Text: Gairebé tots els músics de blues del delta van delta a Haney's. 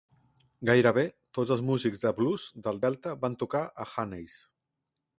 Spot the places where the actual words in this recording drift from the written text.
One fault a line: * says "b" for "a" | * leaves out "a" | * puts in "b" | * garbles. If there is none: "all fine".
* says "tocar" for "delta"